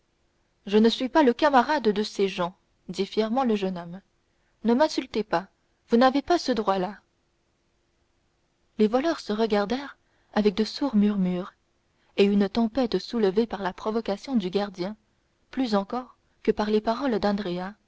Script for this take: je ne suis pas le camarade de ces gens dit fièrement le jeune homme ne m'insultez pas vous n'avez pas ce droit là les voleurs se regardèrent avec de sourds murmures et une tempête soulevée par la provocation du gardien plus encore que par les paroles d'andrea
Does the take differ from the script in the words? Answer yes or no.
no